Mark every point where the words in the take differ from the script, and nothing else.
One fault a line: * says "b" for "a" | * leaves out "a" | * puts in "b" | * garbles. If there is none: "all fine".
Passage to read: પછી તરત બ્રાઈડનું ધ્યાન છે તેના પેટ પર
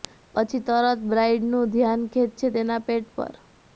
all fine